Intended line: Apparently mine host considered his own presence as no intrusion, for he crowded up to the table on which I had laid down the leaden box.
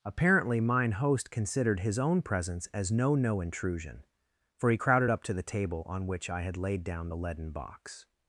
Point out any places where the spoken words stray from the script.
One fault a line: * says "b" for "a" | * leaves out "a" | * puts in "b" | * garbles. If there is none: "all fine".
* puts in "no"